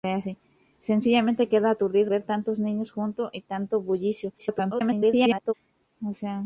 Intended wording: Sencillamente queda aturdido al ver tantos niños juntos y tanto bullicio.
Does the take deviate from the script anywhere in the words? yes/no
yes